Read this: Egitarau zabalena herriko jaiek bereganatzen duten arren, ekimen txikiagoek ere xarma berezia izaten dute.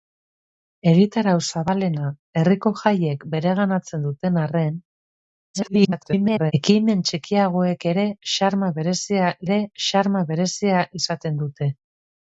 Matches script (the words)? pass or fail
fail